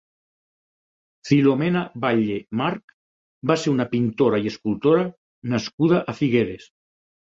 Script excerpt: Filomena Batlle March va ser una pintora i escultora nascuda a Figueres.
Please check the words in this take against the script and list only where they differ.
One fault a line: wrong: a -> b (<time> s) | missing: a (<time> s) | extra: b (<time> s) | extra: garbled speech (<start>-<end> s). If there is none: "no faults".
no faults